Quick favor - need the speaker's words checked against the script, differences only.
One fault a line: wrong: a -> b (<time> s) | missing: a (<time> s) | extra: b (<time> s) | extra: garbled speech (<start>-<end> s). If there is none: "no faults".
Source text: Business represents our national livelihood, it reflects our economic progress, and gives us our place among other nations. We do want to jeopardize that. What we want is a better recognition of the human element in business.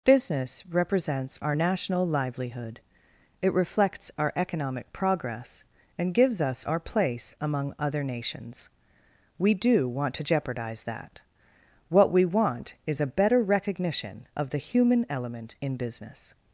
no faults